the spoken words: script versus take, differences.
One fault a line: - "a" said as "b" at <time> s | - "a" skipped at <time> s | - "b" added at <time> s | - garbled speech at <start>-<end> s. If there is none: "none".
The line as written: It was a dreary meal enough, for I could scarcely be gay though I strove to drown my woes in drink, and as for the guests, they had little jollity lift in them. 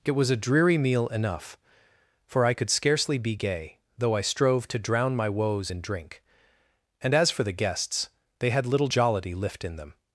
none